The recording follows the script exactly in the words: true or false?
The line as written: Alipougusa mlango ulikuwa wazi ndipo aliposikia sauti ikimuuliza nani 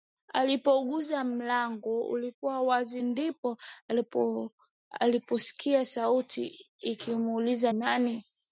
true